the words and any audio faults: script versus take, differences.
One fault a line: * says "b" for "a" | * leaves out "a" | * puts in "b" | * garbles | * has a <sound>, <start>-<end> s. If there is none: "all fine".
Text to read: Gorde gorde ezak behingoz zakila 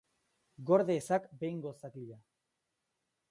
* leaves out "gorde"